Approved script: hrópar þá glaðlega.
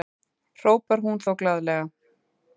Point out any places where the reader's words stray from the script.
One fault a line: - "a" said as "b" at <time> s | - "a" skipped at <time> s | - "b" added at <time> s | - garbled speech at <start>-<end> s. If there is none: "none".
- "hún" added at 1.1 s